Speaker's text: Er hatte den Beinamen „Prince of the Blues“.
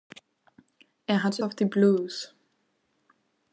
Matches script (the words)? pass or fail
fail